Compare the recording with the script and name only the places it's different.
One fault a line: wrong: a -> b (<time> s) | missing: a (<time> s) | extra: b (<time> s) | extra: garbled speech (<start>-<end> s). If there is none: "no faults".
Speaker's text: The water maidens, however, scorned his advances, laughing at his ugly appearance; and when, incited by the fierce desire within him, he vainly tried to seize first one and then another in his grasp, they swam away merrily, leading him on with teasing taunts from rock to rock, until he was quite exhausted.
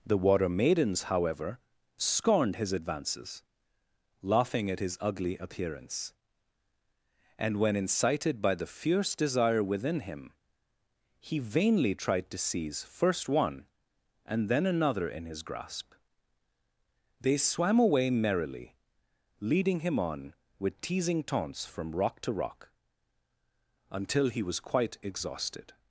no faults